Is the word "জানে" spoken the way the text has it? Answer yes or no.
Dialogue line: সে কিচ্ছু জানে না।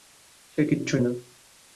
no